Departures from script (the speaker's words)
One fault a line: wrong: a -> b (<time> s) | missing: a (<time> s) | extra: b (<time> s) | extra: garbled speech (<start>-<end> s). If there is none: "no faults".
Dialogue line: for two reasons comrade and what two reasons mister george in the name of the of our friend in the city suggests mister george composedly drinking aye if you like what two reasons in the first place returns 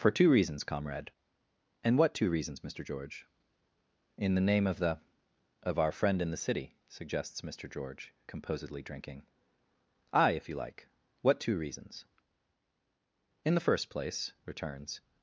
no faults